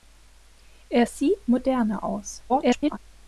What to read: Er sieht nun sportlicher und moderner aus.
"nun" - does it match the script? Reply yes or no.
no